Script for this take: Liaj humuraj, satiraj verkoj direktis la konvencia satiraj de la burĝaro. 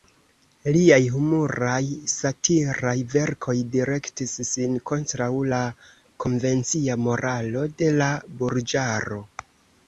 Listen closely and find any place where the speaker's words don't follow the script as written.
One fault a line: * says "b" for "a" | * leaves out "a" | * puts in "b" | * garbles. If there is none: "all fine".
* puts in "sin kontraŭ"
* says "moralo" for "satiraj"